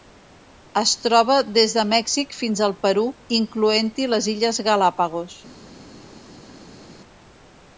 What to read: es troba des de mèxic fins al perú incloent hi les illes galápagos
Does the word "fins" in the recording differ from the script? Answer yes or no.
no